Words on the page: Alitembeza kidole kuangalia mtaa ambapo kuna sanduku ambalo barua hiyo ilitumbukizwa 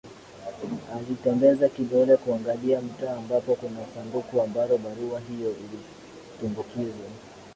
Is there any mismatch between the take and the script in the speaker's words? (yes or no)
no